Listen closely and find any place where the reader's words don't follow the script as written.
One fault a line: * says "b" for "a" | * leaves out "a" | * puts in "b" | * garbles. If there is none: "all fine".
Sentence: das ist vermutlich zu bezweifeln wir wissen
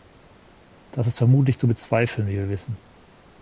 * puts in "wie"